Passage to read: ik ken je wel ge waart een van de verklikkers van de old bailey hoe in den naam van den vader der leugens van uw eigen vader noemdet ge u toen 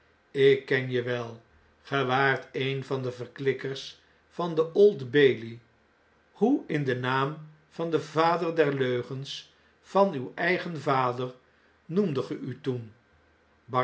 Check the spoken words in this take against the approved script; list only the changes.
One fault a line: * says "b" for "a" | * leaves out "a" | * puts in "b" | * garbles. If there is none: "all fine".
all fine